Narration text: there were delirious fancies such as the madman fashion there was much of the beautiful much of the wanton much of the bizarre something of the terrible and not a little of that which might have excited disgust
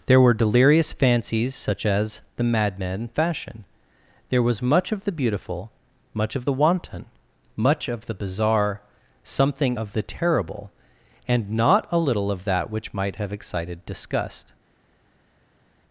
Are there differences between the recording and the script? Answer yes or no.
no